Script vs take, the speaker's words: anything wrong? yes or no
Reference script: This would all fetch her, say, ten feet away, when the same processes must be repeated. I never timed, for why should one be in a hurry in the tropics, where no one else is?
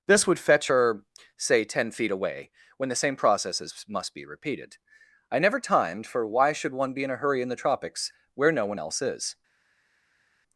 yes